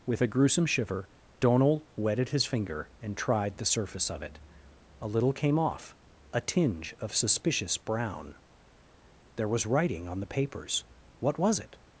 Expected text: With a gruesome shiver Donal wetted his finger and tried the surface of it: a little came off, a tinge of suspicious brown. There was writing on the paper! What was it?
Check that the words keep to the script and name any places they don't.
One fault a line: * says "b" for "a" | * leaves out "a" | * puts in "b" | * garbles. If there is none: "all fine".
* says "papers" for "paper"